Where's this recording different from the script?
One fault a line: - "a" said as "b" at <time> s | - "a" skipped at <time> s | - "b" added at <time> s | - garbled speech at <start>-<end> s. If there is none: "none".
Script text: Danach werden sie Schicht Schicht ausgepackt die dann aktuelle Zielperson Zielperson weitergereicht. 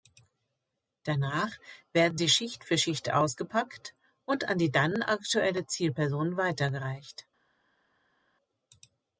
- "für" added at 2.6 s
- "und an" added at 4.2 s
- "Zielperson" skipped at 6.4 s